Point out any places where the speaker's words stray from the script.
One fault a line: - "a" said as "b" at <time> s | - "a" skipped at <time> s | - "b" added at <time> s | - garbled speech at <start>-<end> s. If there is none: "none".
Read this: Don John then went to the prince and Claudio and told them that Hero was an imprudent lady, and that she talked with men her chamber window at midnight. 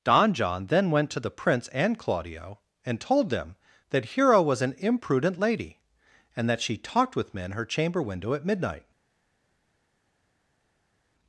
none